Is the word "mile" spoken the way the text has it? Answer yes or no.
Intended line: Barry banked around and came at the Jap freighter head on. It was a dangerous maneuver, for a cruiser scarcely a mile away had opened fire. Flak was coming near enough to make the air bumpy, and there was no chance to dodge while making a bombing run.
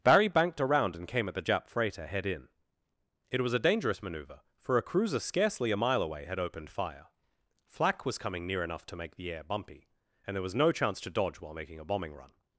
yes